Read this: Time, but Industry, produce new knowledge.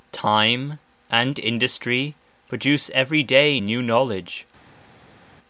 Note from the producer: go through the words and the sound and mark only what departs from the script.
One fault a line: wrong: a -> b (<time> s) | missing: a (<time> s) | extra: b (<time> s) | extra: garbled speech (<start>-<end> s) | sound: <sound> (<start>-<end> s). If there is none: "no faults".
wrong: but -> and (1.1 s)
extra: every day (3.0 s)